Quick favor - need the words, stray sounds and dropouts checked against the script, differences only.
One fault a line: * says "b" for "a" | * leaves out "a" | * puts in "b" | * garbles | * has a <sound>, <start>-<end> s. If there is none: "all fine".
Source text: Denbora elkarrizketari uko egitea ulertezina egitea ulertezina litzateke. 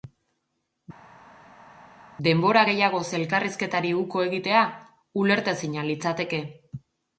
* puts in "gehiagoz"
* leaves out "egitea ulertezina"